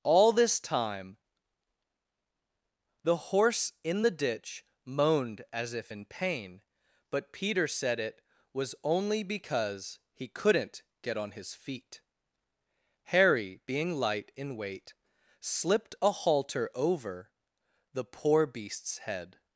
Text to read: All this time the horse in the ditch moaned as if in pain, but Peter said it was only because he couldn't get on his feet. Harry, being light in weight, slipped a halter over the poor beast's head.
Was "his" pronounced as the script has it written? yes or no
yes